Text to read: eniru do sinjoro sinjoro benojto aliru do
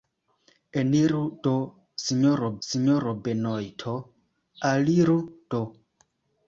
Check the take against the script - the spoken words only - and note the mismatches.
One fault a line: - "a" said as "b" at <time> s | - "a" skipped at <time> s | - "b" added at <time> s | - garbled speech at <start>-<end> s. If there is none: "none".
none